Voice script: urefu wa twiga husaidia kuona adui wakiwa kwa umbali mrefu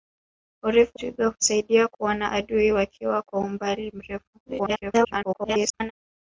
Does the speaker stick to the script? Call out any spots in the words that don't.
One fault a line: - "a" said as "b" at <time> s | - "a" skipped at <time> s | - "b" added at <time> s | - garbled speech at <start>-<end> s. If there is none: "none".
- "wa" skipped at 1.0 s
- garbled speech at 4.5-5.9 s